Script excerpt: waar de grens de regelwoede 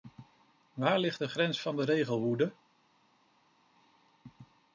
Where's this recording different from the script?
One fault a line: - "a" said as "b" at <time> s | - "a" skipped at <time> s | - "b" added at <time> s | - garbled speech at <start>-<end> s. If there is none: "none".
- "ligt" added at 1.0 s
- "van" added at 1.6 s